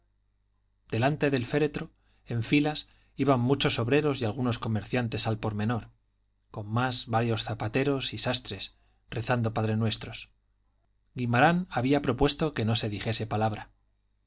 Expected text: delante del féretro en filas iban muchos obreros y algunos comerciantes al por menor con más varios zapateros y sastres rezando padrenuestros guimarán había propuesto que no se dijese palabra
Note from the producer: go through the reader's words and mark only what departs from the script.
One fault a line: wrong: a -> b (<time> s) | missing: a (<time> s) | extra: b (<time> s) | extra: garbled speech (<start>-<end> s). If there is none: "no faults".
no faults